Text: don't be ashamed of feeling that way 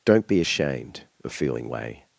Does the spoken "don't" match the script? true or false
true